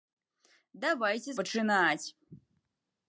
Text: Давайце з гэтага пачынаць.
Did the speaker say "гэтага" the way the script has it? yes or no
no